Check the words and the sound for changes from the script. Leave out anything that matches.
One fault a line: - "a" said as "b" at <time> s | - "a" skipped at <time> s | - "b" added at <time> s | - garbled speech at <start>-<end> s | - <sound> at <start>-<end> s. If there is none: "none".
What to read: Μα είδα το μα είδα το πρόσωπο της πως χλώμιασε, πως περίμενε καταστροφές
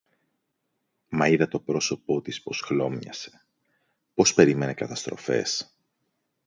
- "μα είδα το" skipped at 1.6 s